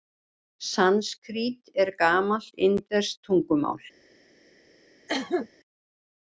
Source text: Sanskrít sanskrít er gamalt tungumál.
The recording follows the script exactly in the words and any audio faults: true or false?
false